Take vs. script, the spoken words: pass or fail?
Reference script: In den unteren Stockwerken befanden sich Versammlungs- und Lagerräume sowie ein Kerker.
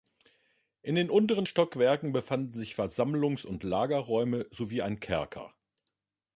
pass